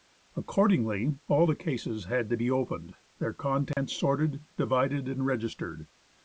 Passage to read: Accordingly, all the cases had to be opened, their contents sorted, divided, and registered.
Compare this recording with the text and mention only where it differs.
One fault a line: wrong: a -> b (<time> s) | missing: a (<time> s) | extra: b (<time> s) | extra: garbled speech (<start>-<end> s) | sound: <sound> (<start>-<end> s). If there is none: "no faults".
sound: dropout (3.7-3.8 s)